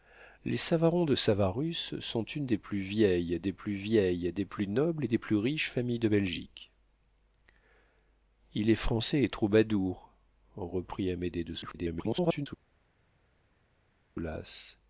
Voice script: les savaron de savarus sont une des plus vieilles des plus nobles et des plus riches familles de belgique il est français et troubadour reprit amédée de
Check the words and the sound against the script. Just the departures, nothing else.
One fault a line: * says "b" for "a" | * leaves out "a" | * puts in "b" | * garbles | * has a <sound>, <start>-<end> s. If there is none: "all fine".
* puts in "vieilles des plus"
* garbles